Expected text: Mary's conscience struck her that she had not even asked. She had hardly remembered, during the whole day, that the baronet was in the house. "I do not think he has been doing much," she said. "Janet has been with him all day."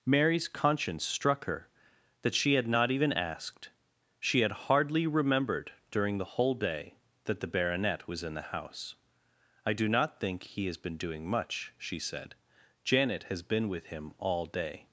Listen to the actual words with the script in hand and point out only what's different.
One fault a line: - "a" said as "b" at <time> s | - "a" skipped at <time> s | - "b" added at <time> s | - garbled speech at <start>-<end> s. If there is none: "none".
none